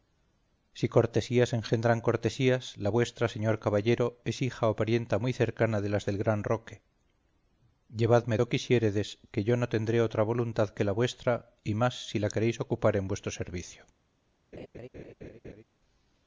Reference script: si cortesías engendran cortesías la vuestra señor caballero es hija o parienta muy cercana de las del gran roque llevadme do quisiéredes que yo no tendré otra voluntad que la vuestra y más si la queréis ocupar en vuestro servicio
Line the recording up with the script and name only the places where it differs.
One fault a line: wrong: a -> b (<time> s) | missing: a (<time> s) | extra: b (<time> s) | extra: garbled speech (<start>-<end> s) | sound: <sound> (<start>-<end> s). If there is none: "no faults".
sound: laugh (14.5-15.6 s)